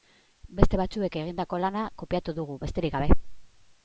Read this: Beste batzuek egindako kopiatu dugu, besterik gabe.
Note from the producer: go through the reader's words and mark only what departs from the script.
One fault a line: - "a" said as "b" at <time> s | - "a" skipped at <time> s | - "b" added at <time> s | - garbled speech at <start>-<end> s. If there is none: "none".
- "lana" added at 1.6 s